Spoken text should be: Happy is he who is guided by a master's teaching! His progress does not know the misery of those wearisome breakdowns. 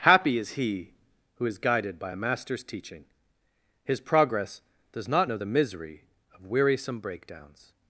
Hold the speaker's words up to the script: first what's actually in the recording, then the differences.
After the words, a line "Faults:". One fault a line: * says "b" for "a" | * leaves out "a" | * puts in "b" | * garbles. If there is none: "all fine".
Happy is he who is guided by a master's teaching! His progress does not know the misery of wearisome breakdowns.
Faults:
* leaves out "those"